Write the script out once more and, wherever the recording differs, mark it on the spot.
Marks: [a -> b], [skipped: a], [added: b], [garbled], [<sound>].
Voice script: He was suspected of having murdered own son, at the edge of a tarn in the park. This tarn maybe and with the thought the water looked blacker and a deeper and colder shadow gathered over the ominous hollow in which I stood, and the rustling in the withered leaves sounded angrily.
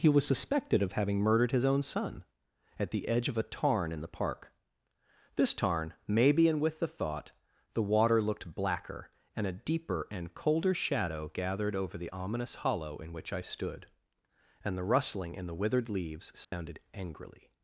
He was suspected of having murdered [added: his] own son, at the edge of a tarn in the park. This tarn maybe and with the thought the water looked blacker and a deeper and colder shadow gathered over the ominous hollow in which I stood, and the rustling in the withered leaves sounded [dropout] angrily.